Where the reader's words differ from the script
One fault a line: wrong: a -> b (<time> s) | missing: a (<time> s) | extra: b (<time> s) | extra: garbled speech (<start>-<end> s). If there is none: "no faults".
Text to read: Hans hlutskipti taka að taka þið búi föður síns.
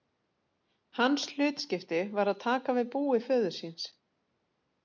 wrong: taka -> var (2.2 s)
wrong: þið -> við (2.8 s)